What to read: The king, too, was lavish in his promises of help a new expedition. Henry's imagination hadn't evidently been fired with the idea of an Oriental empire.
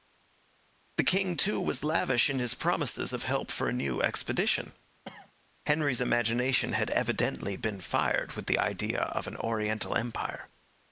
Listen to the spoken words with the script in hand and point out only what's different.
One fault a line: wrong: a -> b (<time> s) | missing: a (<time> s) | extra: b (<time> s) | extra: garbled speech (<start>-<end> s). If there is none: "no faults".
extra: for (3.5 s)
wrong: hadn't -> had (6.7 s)